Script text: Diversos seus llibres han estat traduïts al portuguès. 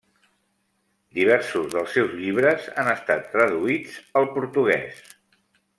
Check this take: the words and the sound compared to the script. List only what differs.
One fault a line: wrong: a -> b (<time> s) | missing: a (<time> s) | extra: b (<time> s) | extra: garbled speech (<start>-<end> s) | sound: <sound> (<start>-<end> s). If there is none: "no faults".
extra: dels (1.8 s)